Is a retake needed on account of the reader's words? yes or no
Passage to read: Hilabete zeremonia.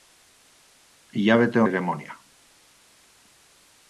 no